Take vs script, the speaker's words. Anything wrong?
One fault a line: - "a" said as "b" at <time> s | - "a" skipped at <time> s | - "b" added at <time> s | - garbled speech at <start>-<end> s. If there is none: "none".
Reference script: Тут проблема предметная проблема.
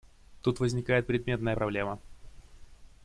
- "проблема" said as "возникает" at 0.6 s